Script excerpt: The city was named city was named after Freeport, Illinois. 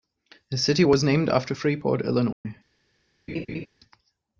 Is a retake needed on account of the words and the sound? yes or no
yes